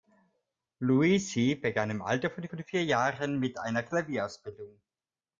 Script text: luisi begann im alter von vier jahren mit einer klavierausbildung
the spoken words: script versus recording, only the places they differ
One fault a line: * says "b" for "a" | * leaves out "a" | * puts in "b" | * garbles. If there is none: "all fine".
* puts in "von"